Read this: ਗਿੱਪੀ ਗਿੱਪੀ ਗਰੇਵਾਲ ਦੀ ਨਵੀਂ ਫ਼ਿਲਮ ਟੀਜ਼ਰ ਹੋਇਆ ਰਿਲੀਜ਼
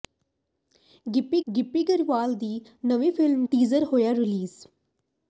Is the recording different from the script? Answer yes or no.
no